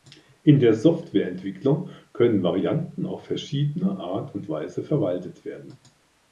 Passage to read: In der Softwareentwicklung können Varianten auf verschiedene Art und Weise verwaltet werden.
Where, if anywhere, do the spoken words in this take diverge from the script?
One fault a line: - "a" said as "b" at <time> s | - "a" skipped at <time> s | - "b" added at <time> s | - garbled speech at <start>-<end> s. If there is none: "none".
none